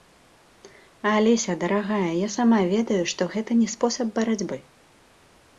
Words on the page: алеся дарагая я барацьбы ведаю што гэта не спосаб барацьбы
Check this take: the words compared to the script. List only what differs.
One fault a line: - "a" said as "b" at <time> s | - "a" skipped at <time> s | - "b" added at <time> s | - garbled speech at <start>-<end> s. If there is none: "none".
- "барацьбы" said as "сама" at 2.4 s